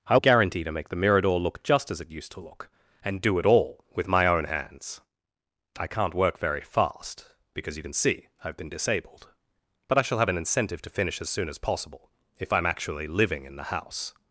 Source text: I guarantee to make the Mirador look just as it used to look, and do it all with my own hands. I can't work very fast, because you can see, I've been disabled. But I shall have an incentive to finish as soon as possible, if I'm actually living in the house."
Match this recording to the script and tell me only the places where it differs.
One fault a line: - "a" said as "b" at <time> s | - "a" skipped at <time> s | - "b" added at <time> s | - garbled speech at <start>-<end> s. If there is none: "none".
none